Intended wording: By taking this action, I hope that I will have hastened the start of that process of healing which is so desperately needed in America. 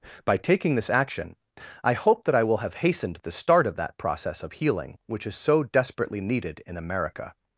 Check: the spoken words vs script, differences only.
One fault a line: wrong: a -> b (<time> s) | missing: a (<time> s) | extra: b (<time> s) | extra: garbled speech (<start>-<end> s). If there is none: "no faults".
no faults